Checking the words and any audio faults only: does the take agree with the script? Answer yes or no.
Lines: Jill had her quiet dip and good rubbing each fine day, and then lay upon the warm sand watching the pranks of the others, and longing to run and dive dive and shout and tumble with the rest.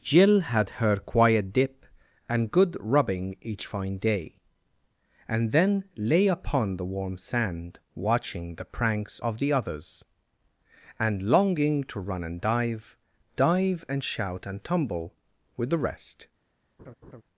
no